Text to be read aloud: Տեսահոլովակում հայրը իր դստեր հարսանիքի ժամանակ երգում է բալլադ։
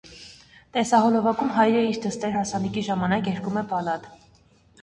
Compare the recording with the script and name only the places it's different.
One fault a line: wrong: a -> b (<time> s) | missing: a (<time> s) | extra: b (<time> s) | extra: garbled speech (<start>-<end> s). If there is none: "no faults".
no faults